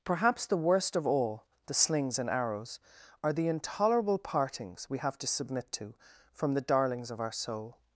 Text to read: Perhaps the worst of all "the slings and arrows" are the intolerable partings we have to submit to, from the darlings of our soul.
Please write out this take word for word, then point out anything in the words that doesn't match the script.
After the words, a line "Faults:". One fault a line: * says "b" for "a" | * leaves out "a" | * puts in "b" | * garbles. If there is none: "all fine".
Perhaps the worst of all "the slings and arrows" are the intolerable partings we have to submit to, from the darlings of our soul.
Faults:
all fine